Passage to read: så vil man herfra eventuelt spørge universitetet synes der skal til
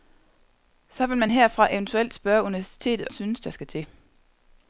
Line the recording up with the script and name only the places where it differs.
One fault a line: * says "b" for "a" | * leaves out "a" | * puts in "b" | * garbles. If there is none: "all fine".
all fine